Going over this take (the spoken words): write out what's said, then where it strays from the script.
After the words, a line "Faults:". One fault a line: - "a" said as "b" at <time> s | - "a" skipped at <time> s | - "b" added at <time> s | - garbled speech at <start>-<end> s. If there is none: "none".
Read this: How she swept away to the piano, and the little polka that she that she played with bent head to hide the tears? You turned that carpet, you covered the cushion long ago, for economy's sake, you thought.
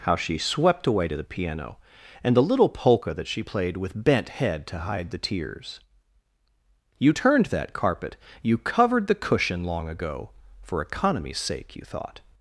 How she swept away to the piano, and the little polka that she played with bent head to hide the tears? You turned that carpet, you covered the cushion long ago, for economy's sake, you thought.
Faults:
- "that she" skipped at 3.4 s